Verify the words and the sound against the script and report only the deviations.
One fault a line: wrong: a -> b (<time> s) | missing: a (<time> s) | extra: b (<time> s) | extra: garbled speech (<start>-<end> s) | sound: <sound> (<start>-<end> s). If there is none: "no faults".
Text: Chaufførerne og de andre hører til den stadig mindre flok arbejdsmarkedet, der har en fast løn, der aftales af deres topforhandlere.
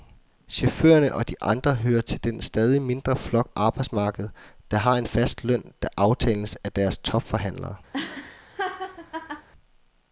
sound: laugh (7.9-9.5 s)